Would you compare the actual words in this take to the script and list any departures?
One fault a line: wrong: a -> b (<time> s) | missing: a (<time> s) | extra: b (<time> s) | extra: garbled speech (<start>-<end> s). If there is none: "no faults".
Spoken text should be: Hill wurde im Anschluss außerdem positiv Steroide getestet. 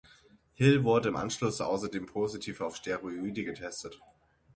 extra: auf (2.6 s)